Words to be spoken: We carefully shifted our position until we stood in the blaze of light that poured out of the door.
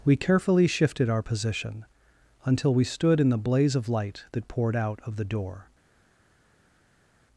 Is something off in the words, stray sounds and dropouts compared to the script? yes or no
no